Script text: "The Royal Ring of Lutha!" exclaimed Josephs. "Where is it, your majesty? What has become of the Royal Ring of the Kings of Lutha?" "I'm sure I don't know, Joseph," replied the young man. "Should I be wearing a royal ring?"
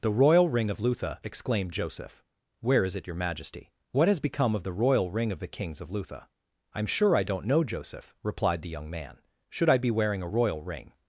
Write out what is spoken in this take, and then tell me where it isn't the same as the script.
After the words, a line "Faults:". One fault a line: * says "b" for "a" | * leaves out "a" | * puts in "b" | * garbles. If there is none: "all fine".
"The Royal Ring of Lutha!" exclaimed Joseph. "Where is it, your majesty? What has become of the Royal Ring of the Kings of Lutha?" "I'm sure I don't know, Joseph," replied the young man. "Should I be wearing a royal ring?"
Faults:
* says "Joseph" for "Josephs"